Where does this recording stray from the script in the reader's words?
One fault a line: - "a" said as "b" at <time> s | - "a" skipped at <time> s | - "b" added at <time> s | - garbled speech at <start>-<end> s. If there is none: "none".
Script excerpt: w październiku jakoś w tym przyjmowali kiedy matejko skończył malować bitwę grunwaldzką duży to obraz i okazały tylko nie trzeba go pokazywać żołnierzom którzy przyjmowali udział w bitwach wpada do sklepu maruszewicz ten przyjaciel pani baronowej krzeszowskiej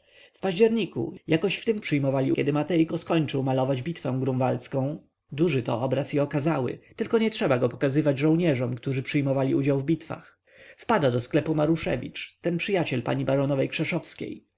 none